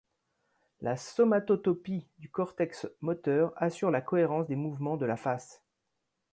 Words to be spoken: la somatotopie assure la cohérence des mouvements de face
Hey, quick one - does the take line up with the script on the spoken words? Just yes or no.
no